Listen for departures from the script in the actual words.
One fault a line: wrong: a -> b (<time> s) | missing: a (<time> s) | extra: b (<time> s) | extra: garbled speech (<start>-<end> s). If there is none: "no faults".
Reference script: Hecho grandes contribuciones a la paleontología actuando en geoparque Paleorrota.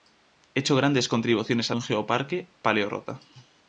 missing: la paleontología actuando (1.8 s)